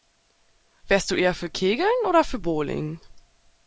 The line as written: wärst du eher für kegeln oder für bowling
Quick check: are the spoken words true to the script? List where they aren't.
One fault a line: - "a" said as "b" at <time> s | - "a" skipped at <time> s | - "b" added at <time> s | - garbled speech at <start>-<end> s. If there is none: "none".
none